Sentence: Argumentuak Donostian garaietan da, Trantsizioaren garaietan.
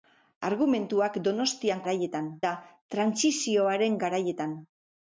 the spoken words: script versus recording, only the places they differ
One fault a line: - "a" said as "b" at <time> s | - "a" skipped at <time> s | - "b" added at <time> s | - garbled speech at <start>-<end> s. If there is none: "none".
none